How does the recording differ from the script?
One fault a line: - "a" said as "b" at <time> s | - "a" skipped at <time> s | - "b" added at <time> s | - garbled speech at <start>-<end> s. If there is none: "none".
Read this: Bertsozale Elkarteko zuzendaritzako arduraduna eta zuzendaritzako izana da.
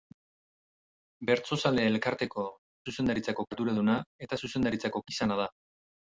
none